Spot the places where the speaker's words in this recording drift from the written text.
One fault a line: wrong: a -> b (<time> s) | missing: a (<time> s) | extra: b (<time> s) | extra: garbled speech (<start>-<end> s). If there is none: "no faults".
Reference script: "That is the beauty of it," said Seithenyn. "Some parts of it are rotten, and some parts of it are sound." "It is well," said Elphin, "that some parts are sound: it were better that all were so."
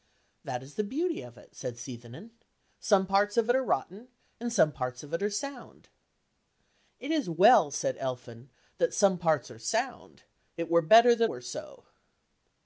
missing: all (11.3 s)